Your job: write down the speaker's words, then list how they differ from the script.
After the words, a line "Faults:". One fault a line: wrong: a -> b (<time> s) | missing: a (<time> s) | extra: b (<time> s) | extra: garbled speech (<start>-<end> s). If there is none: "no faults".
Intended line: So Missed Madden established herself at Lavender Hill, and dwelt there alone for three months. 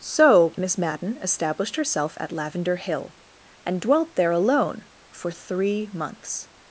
So Miss Madden established herself at Lavender Hill, and dwelt there alone for three months.
Faults:
wrong: Missed -> Miss (0.6 s)